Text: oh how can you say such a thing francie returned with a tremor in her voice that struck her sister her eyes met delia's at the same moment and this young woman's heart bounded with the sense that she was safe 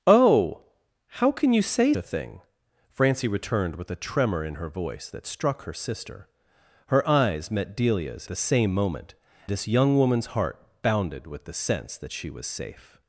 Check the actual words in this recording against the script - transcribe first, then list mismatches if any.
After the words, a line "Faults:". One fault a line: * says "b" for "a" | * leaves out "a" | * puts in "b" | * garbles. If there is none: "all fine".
oh how can you say a thing francie returned with a tremor in her voice that struck her sister her eyes met delia's the same moment this young woman's heart bounded with the sense that she was safe
Faults:
* leaves out "such"
* leaves out "at"
* leaves out "and"